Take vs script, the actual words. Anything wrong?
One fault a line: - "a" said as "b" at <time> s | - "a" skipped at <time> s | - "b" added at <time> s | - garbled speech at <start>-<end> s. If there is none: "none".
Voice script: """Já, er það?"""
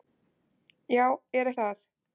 none